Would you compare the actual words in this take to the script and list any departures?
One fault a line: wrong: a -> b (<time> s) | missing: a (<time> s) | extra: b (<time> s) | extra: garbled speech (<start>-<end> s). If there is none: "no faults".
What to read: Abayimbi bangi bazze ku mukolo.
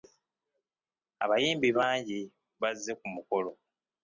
no faults